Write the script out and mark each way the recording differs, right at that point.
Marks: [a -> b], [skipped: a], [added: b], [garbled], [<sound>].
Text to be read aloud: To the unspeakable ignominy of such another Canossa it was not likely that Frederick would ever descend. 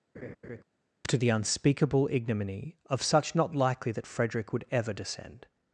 [laugh] To the unspeakable ignominy of such [skipped: another Canossa it was] not likely that Frederick would ever descend.